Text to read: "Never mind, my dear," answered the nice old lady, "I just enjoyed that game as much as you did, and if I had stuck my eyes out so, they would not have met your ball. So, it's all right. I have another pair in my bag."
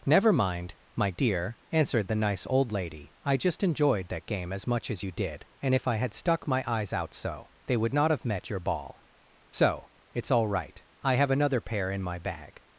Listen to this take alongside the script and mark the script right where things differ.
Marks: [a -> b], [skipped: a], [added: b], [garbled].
"Never mind, my dear," answered the nice old lady, "I just enjoyed that game as much as you did, and if I had stuck my eyes out so, they would not have met your ball. So, it's all right. I have another pair in my bag."